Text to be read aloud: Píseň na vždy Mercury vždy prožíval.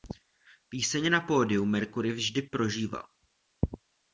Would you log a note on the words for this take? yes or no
yes